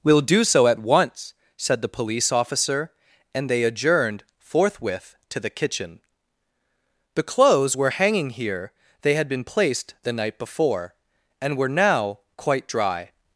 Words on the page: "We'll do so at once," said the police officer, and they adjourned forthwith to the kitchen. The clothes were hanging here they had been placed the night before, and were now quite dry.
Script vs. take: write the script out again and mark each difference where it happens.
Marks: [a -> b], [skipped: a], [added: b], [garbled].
"We'll do so at once," said the police officer, and they adjourned forthwith to the kitchen. The clothes were hanging here they had been placed the night before, and were now quite dry.